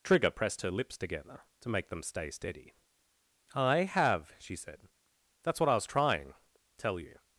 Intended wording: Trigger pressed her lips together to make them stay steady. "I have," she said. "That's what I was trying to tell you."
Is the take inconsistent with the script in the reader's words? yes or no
yes